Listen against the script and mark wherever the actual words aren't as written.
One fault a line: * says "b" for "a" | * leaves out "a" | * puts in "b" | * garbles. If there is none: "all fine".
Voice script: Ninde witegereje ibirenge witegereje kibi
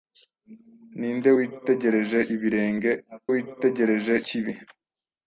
all fine